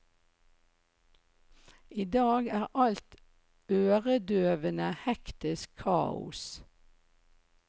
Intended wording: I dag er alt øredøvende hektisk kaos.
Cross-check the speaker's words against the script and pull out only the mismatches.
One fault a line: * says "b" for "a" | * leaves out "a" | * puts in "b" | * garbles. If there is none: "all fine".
all fine